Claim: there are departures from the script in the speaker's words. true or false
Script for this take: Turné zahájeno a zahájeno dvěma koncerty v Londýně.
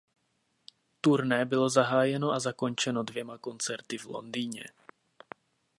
true